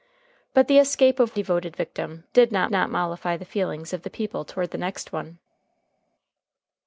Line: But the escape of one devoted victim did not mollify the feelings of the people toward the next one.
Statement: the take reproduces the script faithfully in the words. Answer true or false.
false